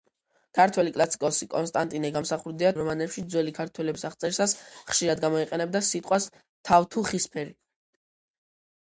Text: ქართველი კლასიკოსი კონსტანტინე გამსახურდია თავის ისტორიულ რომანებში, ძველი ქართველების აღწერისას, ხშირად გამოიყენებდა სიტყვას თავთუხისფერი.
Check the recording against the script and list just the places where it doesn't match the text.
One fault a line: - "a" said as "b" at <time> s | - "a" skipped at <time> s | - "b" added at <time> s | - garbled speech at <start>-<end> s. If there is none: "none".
- "თავის ისტორიულ" skipped at 2.7 s